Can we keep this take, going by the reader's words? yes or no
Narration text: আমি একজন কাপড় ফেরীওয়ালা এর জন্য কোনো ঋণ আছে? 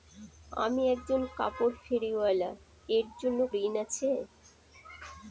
no